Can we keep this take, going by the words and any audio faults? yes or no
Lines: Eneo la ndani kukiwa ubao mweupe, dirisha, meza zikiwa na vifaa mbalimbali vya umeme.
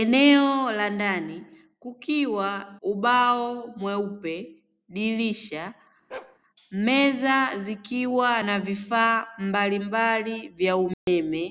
no